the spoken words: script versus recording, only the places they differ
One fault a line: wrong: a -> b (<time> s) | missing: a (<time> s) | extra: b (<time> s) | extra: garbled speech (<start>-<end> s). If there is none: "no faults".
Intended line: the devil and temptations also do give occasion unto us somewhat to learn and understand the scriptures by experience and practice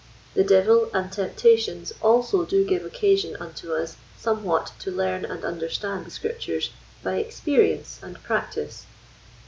no faults